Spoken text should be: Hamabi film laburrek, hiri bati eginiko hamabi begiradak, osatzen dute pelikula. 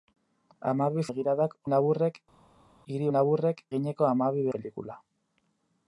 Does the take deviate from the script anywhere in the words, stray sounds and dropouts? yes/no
yes